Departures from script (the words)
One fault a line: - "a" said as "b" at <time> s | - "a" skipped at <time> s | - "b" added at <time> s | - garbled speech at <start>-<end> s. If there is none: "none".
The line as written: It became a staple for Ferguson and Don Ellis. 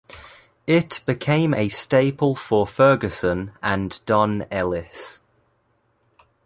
none